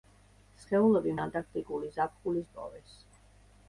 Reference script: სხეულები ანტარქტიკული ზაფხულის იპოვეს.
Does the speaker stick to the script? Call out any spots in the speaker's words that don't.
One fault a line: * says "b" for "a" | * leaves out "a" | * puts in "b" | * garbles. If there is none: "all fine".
all fine